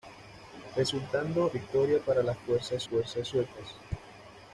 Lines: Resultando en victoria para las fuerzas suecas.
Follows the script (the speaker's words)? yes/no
no